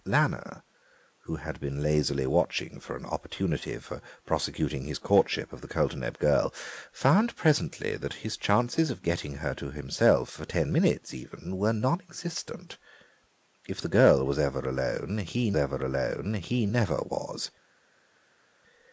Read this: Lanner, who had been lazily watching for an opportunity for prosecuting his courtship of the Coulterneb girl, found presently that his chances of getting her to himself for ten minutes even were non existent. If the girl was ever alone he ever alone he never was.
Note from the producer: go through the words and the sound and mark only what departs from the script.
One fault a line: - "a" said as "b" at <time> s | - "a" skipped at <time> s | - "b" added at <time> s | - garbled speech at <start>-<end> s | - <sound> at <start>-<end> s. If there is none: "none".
none